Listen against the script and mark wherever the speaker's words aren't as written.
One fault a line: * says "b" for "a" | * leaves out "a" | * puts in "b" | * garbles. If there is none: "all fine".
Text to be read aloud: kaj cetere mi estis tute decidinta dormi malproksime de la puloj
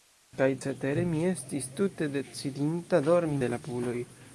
* leaves out "malproksime"